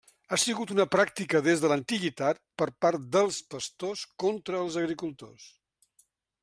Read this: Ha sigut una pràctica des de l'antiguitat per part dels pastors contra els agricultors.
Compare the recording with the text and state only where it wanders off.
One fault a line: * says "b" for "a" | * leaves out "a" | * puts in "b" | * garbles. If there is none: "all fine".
all fine